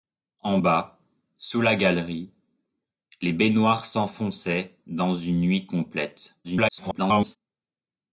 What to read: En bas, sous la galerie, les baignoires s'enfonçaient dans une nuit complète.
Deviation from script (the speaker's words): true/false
true